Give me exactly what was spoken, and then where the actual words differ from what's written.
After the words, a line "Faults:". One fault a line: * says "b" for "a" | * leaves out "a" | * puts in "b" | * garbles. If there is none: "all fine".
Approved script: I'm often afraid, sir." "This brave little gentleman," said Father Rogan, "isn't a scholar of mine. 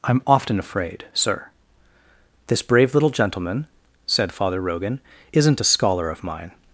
I'm often afraid, sir." "This brave little gentleman," said Father Rogan, "isn't a scholar of mine.
Faults:
all fine